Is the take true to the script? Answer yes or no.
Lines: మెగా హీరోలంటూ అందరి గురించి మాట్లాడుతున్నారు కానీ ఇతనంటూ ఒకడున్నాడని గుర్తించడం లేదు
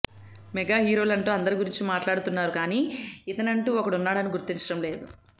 yes